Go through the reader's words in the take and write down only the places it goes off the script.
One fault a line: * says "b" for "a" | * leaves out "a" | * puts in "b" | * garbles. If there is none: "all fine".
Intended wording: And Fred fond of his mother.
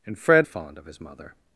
all fine